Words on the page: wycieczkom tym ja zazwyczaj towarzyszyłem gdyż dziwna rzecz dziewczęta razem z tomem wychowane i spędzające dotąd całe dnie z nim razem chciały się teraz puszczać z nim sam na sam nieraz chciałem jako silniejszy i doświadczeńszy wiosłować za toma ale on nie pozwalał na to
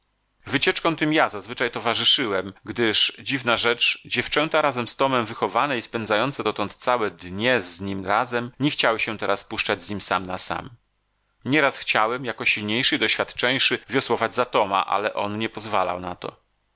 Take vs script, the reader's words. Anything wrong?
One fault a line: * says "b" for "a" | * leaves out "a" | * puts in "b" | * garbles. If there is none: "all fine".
* puts in "nie"